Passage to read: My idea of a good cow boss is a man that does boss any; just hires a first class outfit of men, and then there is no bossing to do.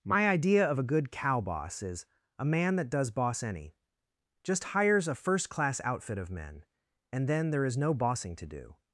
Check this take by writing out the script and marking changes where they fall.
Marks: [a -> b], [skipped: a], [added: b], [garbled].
My idea of a good cow boss is a man that does boss any; just hires a first class outfit of men, and then there is no bossing to do.